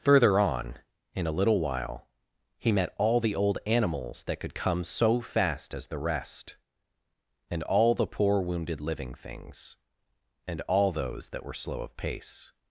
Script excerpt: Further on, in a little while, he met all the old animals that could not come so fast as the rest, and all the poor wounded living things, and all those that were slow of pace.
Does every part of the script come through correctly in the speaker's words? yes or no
no